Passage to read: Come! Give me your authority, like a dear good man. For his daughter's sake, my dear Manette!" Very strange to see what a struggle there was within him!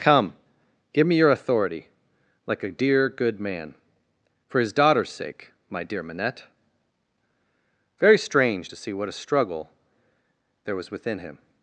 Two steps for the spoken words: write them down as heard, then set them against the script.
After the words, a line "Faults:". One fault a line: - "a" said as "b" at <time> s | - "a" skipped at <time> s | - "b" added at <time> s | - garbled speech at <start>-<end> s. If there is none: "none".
Come! Give me your authority, like a dear good man. For his daughter's sake, my dear Manette!" Very strange to see what a struggle there was within him!
Faults:
none